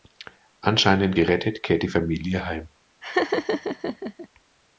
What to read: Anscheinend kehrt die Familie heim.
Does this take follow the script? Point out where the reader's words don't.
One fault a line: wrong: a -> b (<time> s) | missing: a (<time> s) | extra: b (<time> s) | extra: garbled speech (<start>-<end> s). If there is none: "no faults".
extra: gerettet (1.1 s)